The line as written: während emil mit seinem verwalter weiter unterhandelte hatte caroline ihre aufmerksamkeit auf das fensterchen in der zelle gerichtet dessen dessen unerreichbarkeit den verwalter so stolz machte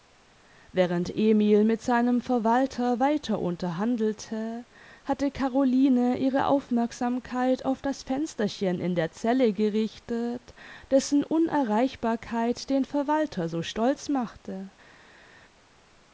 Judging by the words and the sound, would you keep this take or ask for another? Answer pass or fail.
fail